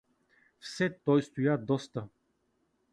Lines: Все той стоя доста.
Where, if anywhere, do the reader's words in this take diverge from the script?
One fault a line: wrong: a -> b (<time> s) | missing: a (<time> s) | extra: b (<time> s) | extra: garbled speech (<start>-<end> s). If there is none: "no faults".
no faults